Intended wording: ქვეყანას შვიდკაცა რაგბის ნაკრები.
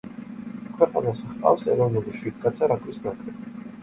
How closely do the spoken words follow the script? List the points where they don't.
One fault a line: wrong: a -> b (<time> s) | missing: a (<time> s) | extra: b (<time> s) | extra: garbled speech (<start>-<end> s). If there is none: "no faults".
extra: ჰყავს ეროვნული (1.3 s)